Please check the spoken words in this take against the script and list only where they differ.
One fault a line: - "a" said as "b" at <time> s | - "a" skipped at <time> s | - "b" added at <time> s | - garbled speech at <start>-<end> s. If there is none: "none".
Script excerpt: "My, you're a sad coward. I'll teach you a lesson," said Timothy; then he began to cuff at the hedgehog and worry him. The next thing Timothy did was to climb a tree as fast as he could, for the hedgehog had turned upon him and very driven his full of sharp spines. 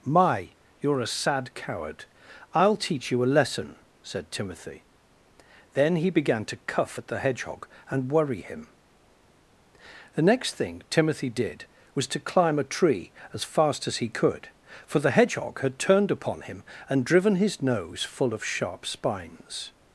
- "very" skipped at 17.1 s
- "nose" added at 17.6 s